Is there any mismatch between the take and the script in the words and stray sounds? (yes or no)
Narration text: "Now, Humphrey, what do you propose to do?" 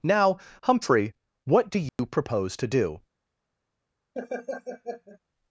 yes